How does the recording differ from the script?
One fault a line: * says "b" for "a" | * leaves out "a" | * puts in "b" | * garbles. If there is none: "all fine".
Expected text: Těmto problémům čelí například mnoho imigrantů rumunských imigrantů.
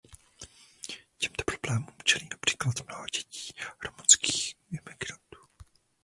* says "dětí" for "imigrantů"